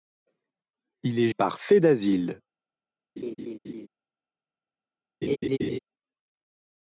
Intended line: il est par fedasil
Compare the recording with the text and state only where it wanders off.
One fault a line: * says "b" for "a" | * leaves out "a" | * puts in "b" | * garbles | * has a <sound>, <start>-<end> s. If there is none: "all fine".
* has a laugh, 3.2-3.9 s
* has a laugh, 5.2-5.8 s